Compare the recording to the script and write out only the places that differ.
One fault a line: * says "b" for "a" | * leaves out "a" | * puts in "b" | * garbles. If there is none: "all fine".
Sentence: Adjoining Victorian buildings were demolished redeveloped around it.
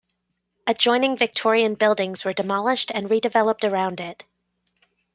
* puts in "and"